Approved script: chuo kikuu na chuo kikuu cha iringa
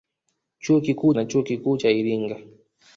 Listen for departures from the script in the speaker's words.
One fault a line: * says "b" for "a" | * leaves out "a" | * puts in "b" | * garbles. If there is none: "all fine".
all fine